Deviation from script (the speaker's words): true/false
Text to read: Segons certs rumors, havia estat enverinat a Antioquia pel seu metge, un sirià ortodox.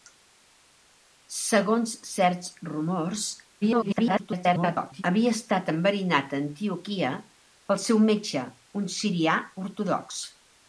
true